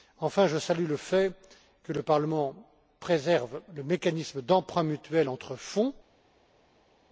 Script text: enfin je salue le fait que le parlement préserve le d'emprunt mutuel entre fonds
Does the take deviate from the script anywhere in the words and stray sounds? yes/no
yes